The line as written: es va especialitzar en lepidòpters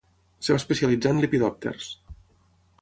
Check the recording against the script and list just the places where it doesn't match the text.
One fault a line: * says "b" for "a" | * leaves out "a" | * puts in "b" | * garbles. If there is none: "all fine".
all fine